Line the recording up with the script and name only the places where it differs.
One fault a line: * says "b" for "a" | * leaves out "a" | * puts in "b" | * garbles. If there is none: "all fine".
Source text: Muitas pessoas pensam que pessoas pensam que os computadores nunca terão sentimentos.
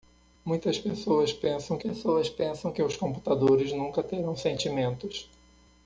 all fine